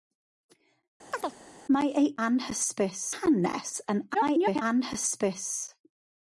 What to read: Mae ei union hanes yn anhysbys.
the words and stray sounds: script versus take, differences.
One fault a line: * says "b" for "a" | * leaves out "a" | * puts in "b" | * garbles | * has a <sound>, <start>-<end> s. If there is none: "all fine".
* has a chirp, 1.1-1.4 s
* says "anhysbys" for "union"
* garbles